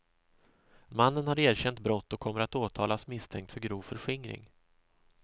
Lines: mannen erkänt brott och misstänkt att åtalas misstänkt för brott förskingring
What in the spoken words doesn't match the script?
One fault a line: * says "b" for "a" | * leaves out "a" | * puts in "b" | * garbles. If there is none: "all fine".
* puts in "har"
* says "kommer" for "misstänkt"
* says "grov" for "brott"